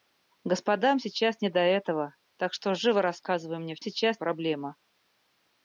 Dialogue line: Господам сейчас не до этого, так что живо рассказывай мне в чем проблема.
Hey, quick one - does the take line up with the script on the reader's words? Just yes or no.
no